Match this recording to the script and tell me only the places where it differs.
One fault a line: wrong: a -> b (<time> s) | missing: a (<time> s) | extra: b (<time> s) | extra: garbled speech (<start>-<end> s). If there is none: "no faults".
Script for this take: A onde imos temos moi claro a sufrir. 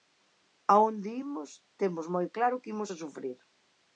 extra: que imos (2.6 s)